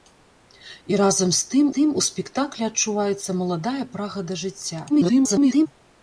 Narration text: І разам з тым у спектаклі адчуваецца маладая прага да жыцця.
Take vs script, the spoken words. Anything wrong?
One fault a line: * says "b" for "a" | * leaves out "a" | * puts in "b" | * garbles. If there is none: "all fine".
* puts in "тым"
* garbles